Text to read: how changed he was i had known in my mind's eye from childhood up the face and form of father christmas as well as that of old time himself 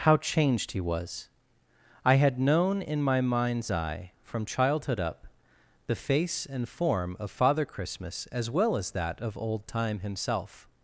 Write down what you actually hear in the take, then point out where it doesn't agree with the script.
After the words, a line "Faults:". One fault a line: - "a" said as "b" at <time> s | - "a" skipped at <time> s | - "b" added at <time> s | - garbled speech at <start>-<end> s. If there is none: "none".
how changed he was i had known in my mind's eye from childhood up the face and form of father christmas as well as that of old time himself
Faults:
none